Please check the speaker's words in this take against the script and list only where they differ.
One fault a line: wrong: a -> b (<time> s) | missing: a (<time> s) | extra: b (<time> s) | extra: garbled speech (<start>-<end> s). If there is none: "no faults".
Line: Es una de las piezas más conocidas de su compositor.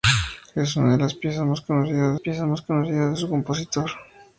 extra: piezas más conocidas (2.2 s)